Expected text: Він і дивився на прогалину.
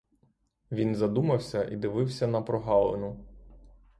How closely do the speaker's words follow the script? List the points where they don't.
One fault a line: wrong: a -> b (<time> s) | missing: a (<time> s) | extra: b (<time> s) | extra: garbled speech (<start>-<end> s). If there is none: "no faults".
extra: задумався (0.9 s)